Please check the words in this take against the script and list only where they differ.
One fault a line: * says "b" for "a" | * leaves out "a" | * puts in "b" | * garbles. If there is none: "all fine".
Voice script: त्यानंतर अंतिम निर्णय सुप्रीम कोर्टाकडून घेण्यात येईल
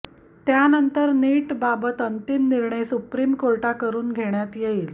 * puts in "नीटबाबत"